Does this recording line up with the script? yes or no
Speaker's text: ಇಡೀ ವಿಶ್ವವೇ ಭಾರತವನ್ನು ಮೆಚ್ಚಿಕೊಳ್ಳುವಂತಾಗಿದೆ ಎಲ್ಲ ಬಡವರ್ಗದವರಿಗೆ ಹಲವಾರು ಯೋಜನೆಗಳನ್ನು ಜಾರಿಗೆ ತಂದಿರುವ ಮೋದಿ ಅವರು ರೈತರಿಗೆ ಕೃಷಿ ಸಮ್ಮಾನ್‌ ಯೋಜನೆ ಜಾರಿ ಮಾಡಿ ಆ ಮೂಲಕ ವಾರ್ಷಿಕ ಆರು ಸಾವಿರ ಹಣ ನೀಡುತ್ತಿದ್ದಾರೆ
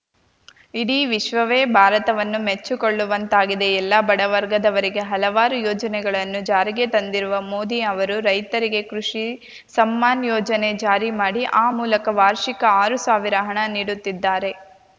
yes